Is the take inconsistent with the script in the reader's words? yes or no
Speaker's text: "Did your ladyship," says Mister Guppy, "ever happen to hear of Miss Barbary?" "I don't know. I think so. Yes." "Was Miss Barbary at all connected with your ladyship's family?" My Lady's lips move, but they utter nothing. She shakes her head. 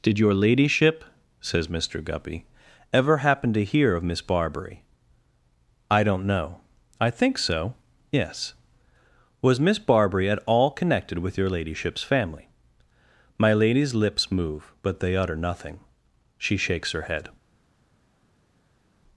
no